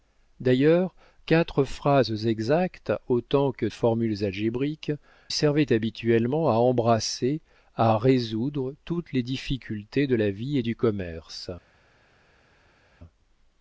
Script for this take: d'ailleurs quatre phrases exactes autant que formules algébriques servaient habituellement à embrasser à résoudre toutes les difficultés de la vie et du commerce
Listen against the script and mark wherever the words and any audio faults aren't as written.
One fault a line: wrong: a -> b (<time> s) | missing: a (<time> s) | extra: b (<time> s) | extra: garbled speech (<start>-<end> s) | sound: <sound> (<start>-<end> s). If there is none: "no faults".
no faults